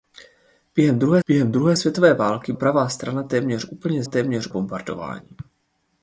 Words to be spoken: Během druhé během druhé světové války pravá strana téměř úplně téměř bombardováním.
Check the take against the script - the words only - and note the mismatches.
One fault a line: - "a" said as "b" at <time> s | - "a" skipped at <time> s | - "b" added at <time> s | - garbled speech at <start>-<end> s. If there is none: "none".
none